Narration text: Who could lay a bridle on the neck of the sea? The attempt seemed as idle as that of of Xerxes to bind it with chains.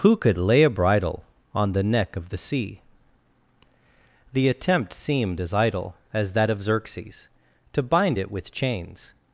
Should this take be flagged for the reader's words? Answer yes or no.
yes